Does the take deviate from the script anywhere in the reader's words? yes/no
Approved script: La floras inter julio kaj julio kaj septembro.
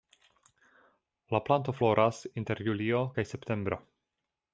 yes